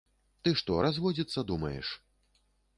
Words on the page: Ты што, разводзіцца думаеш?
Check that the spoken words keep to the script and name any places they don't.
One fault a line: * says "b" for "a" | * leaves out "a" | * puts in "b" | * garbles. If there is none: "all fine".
all fine